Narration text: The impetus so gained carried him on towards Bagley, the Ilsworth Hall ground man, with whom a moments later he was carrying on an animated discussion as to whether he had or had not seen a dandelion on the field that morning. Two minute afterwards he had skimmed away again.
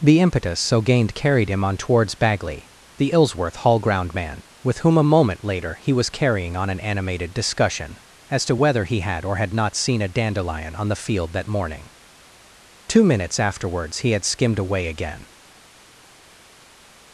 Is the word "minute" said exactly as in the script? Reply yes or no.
no